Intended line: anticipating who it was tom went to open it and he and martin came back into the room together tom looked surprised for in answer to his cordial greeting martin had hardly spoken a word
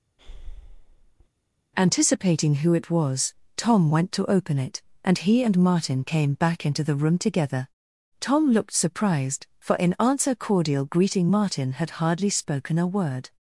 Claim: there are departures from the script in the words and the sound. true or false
true